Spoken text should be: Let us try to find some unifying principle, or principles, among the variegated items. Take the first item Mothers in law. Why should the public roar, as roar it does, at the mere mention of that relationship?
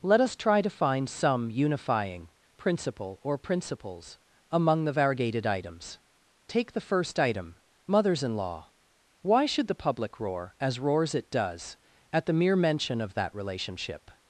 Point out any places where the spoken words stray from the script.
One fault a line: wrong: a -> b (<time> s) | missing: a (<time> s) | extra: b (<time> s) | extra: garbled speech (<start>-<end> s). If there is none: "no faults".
wrong: roar -> roars (10.8 s)